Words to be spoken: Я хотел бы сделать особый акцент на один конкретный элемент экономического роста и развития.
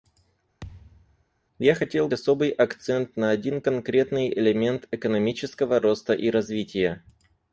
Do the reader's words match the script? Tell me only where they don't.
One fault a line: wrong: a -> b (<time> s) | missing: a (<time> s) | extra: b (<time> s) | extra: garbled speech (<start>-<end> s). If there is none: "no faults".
missing: бы сделать (2.1 s)